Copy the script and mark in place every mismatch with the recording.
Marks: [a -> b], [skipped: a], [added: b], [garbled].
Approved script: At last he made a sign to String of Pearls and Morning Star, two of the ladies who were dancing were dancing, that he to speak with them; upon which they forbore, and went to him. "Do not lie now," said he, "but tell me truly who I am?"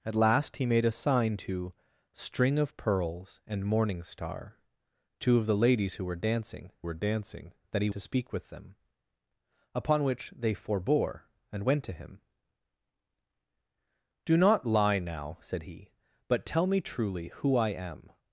At last he made a sign to String of Pearls and Morning Star, two of the ladies who were dancing were dancing, that he to speak with them; upon which they forbore, and went to him. "Do not lie now," said he, "but tell me truly who I am?"